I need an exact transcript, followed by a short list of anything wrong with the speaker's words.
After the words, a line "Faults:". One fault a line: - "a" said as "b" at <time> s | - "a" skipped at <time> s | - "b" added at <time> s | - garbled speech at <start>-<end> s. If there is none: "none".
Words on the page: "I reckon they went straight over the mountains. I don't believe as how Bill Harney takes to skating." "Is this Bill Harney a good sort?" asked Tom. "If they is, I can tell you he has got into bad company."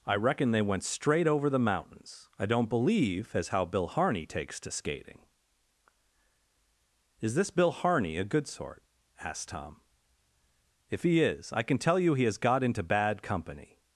"I reckon they went straight over the mountains. I don't believe as how Bill Harney takes to skating." "Is this Bill Harney a good sort?" asked Tom. "If he is, I can tell you he has got into bad company."
Faults:
- "they" said as "he" at 11.0 s